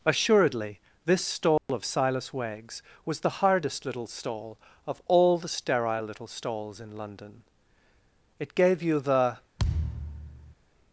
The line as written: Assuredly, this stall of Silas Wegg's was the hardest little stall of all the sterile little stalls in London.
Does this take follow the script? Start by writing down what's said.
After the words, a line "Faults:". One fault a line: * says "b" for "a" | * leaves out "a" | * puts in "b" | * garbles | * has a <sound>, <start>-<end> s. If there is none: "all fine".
Assuredly, this stall of Silas Wegg's was the hardest little stall of all the sterile little stalls in London. It gave you the
Faults:
* has a dropout, 1.6-1.7 s
* puts in "It gave you the"
* has a thud, 9.6-10.5 s